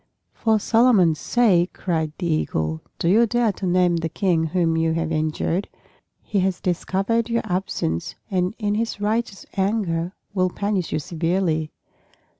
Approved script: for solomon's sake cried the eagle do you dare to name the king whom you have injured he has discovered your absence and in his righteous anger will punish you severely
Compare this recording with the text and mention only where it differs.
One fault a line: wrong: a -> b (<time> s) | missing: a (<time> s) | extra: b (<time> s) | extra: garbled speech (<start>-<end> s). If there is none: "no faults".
no faults